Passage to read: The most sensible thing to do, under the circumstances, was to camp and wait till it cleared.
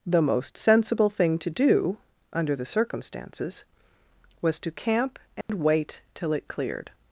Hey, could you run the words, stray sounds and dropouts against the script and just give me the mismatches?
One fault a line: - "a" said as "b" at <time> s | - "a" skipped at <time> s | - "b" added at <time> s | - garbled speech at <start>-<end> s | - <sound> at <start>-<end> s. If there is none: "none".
- dropout at 5.4-5.5 s